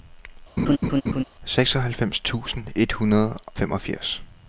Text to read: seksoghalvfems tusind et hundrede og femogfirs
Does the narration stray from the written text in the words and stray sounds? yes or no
yes